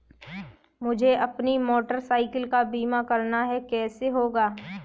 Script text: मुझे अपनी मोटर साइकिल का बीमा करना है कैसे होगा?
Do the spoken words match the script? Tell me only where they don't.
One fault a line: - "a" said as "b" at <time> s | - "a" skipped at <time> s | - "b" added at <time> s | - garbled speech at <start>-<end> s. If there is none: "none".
none